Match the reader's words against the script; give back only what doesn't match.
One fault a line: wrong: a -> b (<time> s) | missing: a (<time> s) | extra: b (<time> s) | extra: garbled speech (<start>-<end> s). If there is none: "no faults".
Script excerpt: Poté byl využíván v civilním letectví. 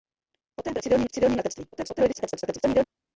wrong: využíván -> civilním (0.8 s)
extra: garbled speech (1.7-2.8 s)